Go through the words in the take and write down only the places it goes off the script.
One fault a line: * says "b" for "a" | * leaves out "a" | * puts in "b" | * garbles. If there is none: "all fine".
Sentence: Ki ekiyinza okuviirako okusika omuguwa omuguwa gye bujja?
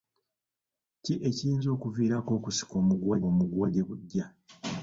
all fine